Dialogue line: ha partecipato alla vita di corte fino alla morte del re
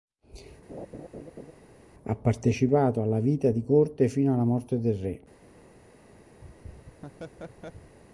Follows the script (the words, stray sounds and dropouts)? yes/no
no